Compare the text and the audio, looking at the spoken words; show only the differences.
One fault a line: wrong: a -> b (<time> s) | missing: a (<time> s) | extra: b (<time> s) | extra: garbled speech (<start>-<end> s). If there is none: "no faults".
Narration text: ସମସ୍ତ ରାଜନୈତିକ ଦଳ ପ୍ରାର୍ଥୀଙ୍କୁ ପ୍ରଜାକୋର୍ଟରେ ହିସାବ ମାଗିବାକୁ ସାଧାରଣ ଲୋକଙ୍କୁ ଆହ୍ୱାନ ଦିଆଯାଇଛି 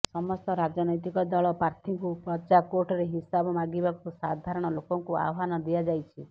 no faults